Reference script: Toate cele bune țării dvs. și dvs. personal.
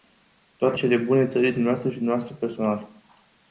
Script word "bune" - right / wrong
right